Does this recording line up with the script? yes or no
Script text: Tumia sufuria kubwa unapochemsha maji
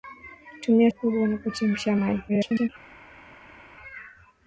no